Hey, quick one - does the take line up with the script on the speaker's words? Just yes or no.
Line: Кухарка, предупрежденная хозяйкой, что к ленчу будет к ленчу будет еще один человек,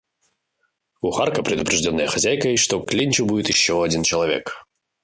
no